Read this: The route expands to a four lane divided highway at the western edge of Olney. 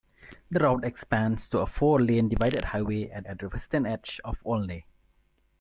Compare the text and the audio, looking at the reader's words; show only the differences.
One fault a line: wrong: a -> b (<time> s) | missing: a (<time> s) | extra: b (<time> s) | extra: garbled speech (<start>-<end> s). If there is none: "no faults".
extra: at (3.2 s)